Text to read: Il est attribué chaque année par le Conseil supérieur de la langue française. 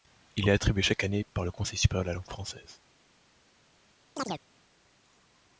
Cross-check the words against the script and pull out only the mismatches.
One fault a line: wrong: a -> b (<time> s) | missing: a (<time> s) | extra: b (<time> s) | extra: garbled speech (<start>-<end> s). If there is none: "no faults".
no faults